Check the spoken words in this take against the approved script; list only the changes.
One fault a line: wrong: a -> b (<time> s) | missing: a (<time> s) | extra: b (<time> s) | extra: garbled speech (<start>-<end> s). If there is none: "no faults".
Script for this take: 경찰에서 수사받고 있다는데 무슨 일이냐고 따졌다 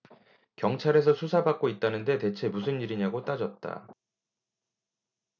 extra: 대체 (2.2 s)